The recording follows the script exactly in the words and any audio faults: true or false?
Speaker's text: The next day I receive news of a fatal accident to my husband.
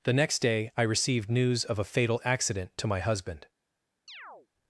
false